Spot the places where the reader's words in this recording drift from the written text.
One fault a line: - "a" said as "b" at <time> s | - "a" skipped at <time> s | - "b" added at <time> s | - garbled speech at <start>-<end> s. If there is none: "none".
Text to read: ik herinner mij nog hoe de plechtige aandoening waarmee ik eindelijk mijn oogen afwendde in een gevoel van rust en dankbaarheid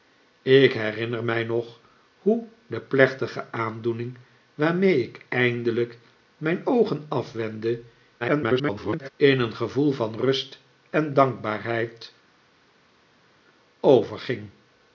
- garbled speech at 8.2-9.1 s